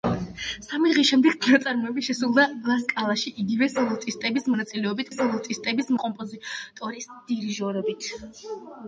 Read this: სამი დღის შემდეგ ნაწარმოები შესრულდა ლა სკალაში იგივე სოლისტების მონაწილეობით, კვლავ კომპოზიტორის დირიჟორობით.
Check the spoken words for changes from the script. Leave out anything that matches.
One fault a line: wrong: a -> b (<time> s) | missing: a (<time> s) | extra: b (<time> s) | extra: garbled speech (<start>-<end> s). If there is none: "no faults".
wrong: კვლავ -> სოლისტების (5.2 s)